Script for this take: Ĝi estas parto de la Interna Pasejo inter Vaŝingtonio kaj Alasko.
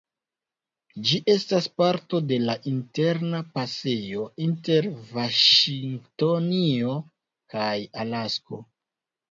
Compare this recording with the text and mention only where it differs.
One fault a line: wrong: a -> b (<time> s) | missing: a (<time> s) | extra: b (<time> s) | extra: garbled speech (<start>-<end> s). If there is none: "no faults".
no faults